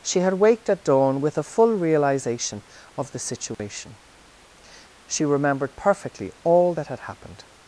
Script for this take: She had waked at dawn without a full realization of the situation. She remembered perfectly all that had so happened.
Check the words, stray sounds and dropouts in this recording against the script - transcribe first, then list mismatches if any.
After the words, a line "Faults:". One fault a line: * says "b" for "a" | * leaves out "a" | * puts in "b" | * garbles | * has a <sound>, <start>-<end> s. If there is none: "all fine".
She had waked at dawn with a full realization of the situation. She remembered perfectly all that had happened.
Faults:
* says "with" for "without"
* has a dropout, 3.5-3.6 s
* leaves out "so"